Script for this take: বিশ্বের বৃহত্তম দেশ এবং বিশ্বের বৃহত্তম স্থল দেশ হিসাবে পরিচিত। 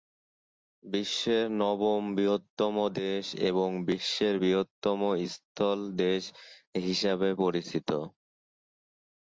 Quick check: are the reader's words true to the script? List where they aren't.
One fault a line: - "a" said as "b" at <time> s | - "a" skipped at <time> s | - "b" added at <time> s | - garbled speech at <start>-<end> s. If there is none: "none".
- "নবম" added at 1.6 s